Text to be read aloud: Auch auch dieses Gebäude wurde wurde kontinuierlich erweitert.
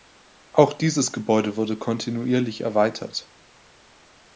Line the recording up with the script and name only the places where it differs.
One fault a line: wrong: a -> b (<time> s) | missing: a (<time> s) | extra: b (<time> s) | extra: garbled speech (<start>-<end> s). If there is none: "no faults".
missing: auch (0.7 s)
missing: wurde (1.8 s)